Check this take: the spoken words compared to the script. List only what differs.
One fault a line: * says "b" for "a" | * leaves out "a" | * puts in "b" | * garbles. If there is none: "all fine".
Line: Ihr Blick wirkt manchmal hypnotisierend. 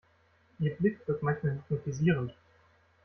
all fine